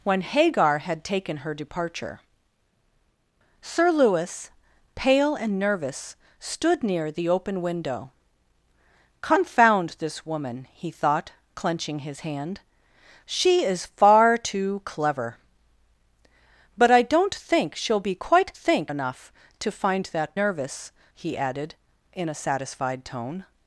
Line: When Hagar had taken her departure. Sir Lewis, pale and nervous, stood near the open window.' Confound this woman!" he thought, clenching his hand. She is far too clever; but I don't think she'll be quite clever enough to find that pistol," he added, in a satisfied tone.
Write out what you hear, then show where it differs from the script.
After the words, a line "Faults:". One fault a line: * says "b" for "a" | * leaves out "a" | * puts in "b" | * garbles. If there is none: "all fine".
When Hagar had taken her departure. Sir Lewis, pale and nervous, stood near the open window.' Confound this woman!" he thought, clenching his hand. She is far too clever; but I don't think she'll be quite think enough to find that nervous," he added, in a satisfied tone.
Faults:
* says "think" for "clever"
* says "nervous" for "pistol"